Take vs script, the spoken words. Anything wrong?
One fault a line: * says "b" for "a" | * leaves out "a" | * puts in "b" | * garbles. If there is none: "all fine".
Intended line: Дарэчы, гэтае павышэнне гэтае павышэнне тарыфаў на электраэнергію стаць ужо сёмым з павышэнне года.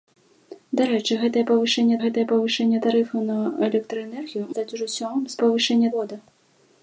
all fine